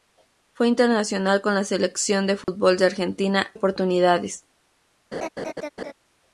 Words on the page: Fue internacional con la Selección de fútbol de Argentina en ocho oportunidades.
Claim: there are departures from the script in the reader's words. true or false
true